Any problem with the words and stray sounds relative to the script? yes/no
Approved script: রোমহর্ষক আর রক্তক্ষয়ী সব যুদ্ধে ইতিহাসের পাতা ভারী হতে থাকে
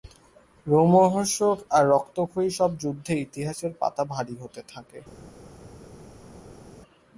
no